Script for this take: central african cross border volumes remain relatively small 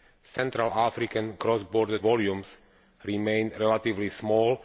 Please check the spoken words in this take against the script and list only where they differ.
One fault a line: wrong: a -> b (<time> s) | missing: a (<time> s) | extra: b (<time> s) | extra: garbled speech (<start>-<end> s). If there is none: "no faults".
no faults